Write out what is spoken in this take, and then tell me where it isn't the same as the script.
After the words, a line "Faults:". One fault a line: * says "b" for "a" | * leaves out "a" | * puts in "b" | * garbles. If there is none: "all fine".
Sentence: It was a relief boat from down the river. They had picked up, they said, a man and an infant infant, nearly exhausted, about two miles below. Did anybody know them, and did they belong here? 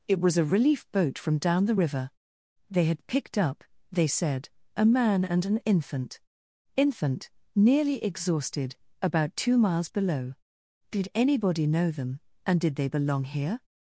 It was a relief boat from down the river. They had picked up, they said, a man and an infant infant, nearly exhausted, about two miles below. Did anybody know them, and did they belong here?
Faults:
all fine